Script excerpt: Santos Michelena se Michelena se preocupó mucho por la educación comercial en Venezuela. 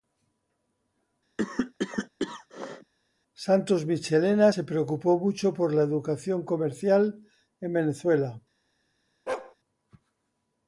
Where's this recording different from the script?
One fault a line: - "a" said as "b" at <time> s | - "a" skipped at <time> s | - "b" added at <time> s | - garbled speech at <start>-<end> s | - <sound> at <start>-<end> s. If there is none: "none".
- cough at 1.4-2.9 s
- "Michelena se" skipped at 4.6 s
- bark at 9.3-9.6 s